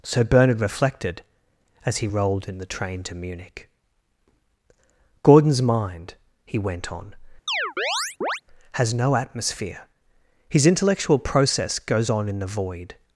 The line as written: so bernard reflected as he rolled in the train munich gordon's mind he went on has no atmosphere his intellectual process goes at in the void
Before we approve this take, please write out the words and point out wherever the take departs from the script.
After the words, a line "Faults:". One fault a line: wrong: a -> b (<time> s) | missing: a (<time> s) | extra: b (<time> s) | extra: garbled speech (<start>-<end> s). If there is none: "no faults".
so bernard reflected as he rolled in the train to munich gordon's mind he went on has no atmosphere his intellectual process goes on in the void
Faults:
extra: to (3.0 s)
wrong: at -> on (12.1 s)